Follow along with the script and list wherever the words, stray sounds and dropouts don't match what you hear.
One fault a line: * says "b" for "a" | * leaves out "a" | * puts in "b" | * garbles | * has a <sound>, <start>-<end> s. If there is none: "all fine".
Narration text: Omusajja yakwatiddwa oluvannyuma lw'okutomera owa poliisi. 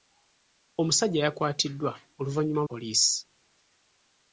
* leaves out "lw'okutomera owa"